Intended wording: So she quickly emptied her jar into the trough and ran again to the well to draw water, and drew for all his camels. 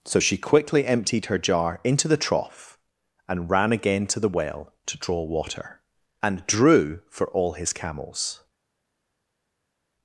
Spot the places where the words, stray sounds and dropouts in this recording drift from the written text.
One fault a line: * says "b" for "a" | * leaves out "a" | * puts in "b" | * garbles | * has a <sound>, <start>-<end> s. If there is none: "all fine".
all fine